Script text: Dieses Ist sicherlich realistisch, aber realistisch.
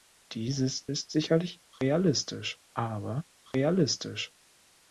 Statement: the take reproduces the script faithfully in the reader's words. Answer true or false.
true